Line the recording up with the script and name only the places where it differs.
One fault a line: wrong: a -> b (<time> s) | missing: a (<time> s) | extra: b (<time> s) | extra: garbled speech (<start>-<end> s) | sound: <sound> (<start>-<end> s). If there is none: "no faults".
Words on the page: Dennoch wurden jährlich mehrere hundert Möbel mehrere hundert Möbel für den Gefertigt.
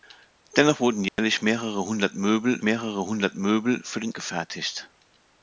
sound: dropout (1.1-1.2 s)